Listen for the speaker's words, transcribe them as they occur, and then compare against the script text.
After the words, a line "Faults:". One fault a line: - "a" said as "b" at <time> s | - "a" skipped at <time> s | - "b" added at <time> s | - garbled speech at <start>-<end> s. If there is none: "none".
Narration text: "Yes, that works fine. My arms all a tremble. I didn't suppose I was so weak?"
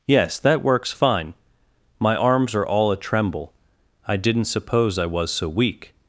"Yes, that works fine. My arms are all a tremble. I didn't suppose I was so weak?"
Faults:
- "are" added at 2.6 s